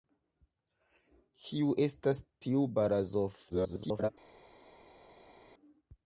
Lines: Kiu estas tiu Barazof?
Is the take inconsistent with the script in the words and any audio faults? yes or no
yes